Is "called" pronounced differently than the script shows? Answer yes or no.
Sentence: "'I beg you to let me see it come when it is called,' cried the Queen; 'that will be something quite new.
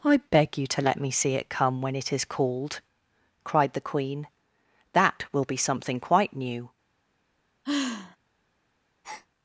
no